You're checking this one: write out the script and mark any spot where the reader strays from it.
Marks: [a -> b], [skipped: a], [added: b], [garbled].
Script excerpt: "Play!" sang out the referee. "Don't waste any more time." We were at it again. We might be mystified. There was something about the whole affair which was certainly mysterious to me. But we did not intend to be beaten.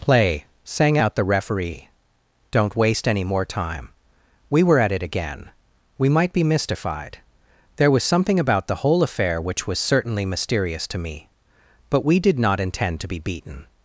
"Play!" sang out the referee. "Don't waste any more time." We were at it again. We might be mystified. There was something about the whole affair which was certainly mysterious to me. But we did not intend to be beaten.